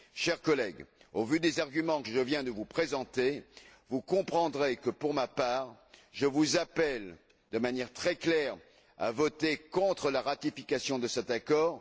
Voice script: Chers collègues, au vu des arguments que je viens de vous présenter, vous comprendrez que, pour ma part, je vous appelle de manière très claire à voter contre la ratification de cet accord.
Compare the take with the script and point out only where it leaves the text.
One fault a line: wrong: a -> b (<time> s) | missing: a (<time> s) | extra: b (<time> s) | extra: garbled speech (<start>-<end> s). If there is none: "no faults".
no faults